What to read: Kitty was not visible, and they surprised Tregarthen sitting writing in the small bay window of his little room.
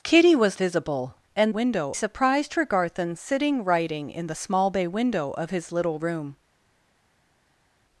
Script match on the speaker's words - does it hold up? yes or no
no